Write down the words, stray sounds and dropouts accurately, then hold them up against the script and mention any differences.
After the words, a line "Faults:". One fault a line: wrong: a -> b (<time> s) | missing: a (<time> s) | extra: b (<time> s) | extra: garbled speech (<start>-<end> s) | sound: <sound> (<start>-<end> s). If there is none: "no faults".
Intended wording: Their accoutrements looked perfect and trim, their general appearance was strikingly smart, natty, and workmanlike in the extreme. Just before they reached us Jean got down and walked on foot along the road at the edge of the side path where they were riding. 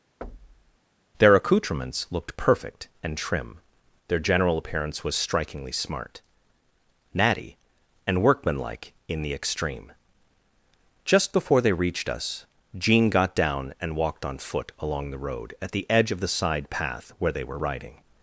Their accoutrements looked perfect and trim, their general appearance was strikingly smart, natty, and workmanlike in the extreme. Just before they reached us Jean got down and walked on foot along the road at the edge of the side path where they were riding.
Faults:
sound: thud (0.2-0.8 s)